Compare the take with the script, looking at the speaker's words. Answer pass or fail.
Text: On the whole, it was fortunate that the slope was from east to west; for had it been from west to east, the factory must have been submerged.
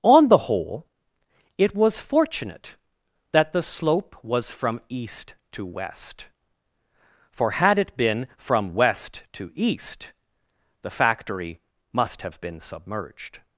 pass